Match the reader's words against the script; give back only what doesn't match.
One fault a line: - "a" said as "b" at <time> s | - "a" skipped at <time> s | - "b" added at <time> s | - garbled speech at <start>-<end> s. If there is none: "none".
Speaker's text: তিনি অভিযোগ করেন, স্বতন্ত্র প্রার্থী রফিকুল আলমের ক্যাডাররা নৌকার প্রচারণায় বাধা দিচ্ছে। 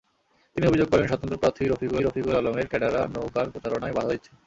- "রফিকুল" added at 2.0 s